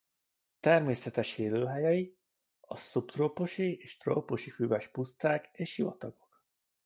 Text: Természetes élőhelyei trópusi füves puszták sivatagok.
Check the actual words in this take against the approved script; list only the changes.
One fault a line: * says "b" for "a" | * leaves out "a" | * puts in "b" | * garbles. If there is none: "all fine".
* puts in "a szubtrópusi és"
* puts in "és"